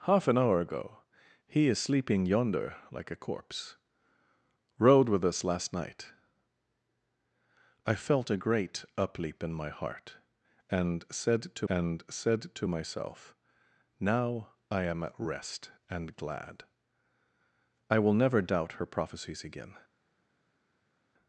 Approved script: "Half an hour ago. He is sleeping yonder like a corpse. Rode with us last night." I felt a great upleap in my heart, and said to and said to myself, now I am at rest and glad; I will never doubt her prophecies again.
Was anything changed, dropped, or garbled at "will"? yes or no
no